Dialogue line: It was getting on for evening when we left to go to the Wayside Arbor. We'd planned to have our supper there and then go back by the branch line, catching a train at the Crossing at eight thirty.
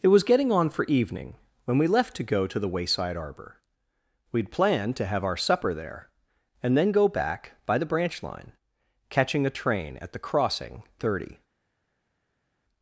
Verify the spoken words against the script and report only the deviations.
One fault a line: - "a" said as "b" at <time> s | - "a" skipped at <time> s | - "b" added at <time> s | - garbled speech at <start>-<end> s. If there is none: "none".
- "at eight" skipped at 10.8 s